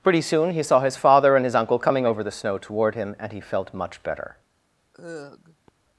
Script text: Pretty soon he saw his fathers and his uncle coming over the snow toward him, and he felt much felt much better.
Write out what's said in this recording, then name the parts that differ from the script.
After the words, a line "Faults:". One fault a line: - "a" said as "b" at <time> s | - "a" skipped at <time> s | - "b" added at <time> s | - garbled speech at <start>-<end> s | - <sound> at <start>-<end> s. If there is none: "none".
Pretty soon he saw his father and his uncle coming over the snow toward him, and he felt much better.
Faults:
- "fathers" said as "father" at 1.0 s
- "felt much" skipped at 4.0 s
- sigh at 4.9-5.7 s